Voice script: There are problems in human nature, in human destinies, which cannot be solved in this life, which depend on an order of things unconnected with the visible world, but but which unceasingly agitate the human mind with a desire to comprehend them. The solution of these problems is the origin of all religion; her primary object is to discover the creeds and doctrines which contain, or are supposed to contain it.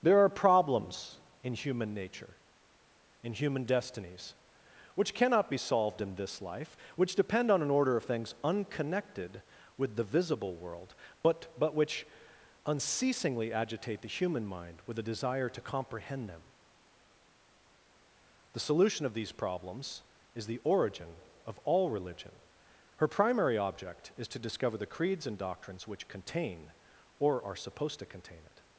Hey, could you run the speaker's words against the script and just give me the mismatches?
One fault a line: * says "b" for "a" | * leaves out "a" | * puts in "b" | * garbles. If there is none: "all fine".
all fine